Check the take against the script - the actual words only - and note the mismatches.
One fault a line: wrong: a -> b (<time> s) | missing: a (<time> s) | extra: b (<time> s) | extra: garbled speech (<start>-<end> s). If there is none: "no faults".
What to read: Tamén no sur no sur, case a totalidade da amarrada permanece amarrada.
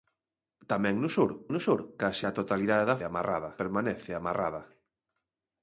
no faults